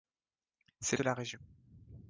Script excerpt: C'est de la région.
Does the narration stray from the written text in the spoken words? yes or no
no